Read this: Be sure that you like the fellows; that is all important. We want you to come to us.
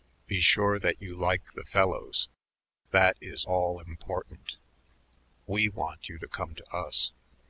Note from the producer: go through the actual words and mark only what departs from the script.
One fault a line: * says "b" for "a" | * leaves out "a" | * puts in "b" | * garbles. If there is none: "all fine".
all fine